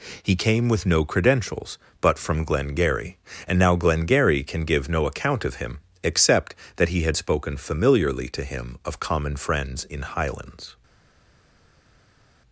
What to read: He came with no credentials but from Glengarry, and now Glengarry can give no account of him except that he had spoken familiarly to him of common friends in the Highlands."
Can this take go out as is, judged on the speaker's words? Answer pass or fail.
fail